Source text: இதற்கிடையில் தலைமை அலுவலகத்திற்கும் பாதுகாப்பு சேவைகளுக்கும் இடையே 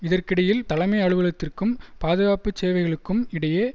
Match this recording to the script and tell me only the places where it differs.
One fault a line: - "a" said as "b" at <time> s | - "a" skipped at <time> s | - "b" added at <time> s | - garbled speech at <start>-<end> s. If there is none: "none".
none